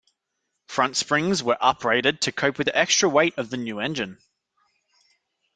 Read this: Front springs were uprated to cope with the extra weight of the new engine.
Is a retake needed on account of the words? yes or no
no